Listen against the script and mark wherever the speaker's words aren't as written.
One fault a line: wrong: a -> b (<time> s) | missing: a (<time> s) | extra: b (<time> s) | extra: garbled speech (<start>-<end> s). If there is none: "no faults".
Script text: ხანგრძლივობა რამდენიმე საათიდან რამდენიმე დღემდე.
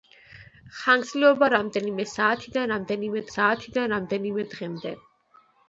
extra: საათიდან რამდენიმე (3.3 s)